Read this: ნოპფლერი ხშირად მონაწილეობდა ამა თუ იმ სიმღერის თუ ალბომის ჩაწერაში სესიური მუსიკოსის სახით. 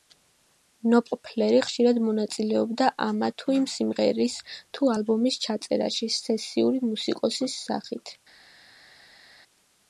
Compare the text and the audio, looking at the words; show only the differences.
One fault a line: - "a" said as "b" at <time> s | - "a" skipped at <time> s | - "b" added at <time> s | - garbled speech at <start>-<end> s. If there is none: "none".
none